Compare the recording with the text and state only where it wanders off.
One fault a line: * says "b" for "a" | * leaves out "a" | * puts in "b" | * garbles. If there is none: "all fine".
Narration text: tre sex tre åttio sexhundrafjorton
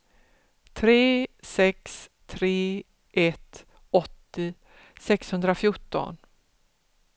* puts in "ett"